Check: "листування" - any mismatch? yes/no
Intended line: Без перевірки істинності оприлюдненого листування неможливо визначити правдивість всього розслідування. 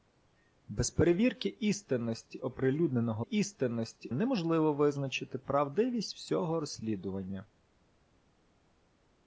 yes